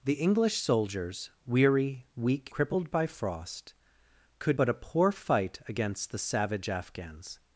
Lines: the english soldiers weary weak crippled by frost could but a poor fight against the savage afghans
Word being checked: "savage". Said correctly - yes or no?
yes